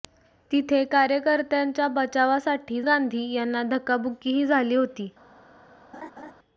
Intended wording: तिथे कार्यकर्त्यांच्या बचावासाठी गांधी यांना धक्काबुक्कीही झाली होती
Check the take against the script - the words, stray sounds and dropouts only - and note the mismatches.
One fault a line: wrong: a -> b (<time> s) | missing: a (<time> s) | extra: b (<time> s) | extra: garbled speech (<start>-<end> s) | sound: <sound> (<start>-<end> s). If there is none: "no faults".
sound: laugh (5.9-6.3 s)